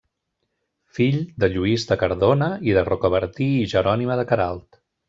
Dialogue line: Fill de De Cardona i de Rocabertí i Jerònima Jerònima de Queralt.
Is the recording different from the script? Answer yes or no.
yes